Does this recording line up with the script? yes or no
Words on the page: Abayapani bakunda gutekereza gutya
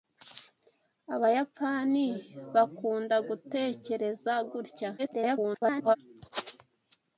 no